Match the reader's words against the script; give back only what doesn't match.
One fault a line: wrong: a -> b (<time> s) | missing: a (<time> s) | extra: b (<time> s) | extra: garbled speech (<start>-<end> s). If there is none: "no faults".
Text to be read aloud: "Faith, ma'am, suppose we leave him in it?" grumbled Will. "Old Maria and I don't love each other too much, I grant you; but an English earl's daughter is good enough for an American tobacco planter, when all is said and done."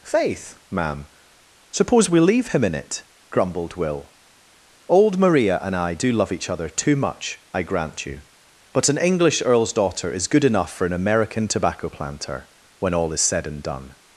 wrong: don't -> do (5.9 s)